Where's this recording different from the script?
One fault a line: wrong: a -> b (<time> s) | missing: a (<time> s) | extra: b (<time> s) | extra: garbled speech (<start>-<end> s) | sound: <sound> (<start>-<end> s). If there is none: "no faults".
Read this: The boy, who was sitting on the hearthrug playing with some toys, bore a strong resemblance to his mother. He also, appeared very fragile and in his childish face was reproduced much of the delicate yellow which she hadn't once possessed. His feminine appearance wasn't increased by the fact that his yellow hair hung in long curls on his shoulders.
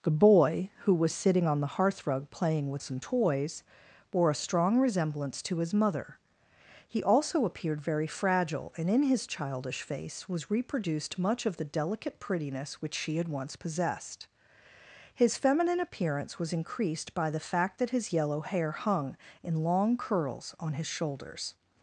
wrong: yellow -> prettiness (12.2 s)
wrong: hadn't -> had (13.2 s)
wrong: wasn't -> was (16.4 s)